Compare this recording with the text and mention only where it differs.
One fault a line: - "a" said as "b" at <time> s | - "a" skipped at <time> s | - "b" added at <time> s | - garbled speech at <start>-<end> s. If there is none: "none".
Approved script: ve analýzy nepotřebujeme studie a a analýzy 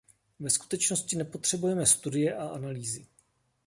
- "analýzy" said as "skutečnosti" at 0.5 s
- "a" skipped at 2.5 s